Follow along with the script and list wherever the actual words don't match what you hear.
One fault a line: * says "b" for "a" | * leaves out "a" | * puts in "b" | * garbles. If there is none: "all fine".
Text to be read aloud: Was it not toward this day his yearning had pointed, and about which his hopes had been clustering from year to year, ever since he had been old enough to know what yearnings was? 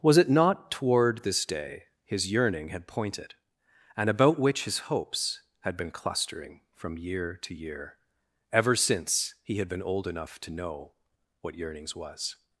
all fine